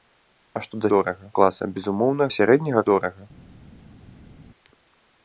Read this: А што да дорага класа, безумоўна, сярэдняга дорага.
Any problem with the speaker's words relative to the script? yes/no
no